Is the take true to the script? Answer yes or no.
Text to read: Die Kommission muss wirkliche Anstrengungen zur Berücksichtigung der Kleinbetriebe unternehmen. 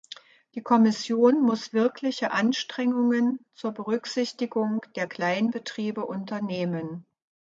yes